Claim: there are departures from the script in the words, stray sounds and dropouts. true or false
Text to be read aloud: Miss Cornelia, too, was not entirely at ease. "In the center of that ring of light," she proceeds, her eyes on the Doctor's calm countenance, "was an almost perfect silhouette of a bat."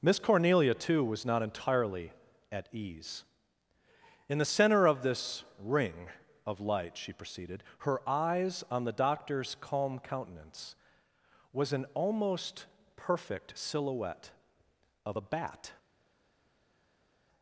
true